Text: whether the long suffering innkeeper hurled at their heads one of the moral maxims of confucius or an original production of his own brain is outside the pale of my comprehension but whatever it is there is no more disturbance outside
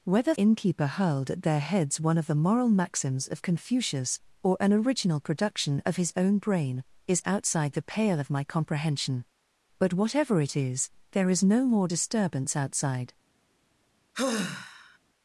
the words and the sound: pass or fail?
fail